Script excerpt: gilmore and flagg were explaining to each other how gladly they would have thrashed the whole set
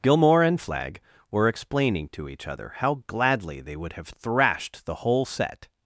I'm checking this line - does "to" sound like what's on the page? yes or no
yes